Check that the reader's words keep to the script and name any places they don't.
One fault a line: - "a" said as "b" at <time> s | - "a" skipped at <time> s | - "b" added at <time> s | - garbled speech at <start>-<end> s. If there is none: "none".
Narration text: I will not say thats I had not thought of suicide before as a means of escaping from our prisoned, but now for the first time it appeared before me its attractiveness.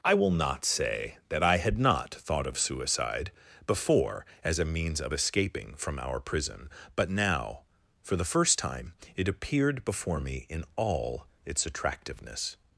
- "thats" said as "that" at 1.3 s
- "prisoned" said as "prison" at 6.2 s
- "in all" added at 10.5 s